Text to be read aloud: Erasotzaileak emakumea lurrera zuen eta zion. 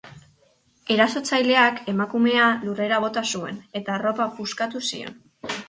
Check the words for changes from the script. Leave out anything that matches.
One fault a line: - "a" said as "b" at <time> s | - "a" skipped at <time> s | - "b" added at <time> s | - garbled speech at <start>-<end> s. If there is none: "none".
- "bota" added at 3.1 s
- "arropa puskatu" added at 4.0 s